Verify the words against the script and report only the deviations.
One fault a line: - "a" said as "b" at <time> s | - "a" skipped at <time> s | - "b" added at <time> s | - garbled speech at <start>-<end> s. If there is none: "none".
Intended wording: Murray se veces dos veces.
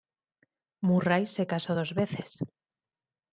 - "veces" said as "casó" at 1.4 s